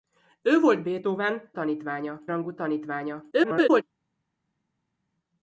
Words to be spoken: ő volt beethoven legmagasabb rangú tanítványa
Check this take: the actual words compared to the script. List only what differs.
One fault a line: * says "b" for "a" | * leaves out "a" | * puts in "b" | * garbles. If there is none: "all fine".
* says "tanítványa" for "legmagasabb"
* garbles